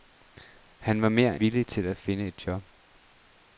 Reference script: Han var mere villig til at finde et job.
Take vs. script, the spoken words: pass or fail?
pass